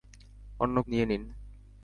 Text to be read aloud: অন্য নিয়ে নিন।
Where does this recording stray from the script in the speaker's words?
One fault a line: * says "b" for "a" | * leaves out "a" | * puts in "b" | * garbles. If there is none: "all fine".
all fine